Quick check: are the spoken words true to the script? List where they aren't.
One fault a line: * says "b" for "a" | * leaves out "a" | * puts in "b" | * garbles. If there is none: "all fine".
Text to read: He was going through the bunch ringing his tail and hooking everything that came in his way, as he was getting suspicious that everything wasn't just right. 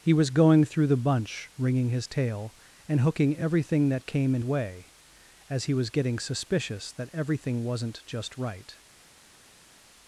* leaves out "his"